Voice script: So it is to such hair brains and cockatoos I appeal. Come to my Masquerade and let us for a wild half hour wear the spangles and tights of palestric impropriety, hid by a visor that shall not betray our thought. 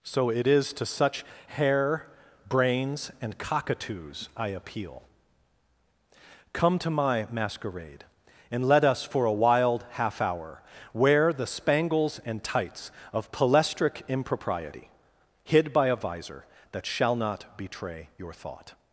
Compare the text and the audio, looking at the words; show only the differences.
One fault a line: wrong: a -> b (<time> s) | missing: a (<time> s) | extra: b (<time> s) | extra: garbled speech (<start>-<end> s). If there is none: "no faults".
wrong: our -> your (18.2 s)